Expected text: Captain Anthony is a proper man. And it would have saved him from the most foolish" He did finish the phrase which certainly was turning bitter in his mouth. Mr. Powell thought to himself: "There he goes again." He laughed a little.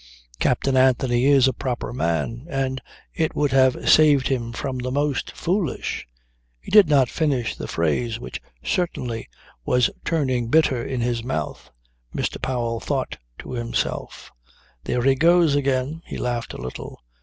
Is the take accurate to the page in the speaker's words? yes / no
no